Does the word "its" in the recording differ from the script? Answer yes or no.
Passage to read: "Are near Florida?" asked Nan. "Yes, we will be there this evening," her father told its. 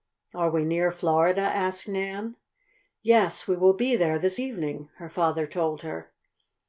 yes